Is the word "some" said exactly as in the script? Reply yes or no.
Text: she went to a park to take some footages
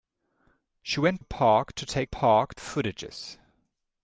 no